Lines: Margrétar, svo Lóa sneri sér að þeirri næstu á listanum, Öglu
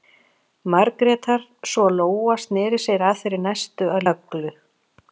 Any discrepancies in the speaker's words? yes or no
yes